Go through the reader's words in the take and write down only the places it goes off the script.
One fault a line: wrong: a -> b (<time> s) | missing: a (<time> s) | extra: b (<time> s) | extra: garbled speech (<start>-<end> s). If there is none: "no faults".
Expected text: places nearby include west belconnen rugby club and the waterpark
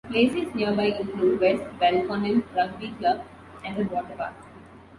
no faults